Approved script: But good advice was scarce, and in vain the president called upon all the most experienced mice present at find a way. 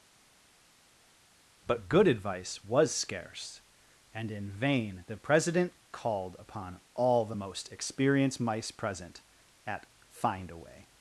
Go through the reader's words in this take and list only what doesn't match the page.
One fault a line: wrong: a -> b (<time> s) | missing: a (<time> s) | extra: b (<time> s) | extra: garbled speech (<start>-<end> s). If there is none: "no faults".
no faults